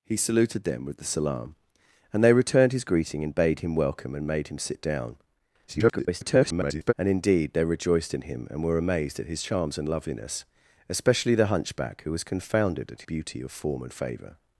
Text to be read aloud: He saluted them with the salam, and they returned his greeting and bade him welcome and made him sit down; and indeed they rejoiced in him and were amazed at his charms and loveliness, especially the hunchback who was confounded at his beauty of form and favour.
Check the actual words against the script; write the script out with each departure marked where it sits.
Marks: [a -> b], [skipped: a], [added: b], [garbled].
He saluted them with the salam, and they returned his greeting and bade him welcome and made him sit down; [garbled] and indeed they rejoiced in him and were amazed at his charms and loveliness, especially the hunchback who was confounded at [skipped: his] beauty of form and favour.